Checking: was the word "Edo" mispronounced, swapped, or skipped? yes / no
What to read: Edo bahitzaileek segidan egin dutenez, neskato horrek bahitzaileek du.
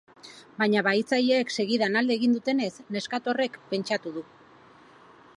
yes